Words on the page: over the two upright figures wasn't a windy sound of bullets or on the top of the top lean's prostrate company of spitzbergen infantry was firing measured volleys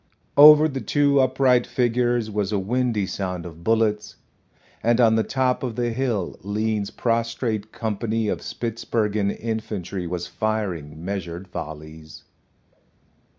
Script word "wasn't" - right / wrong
wrong